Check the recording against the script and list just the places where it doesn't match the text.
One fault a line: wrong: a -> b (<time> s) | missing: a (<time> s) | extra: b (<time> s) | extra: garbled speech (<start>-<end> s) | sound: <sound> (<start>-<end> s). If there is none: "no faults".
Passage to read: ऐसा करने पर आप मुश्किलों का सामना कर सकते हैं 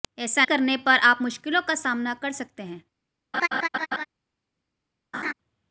sound: laugh (3.3-4.1 s)
sound: laugh (5.1-5.3 s)